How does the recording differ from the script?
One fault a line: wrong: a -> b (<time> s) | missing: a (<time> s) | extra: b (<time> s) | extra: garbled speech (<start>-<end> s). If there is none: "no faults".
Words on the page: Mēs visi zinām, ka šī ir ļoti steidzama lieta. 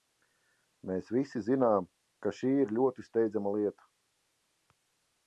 no faults